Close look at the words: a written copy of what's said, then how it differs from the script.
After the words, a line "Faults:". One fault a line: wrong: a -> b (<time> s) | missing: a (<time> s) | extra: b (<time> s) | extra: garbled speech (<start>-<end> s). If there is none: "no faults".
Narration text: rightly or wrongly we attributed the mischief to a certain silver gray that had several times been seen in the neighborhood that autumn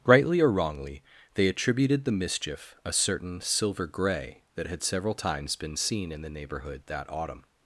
rightly or wrongly they attributed the mischief a certain silver gray that had several times been seen in the neighborhood that autumn
Faults:
wrong: we -> they (1.4 s)
missing: to (2.8 s)